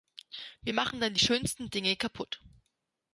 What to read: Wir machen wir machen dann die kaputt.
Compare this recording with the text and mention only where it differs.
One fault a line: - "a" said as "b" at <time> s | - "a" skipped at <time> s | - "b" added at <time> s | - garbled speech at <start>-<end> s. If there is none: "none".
- "wir machen dann die" said as "dann die schönsten Dinge" at 1.0 s